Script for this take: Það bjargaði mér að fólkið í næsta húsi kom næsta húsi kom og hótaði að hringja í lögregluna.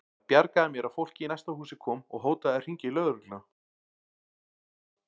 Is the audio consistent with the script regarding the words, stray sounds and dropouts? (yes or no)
no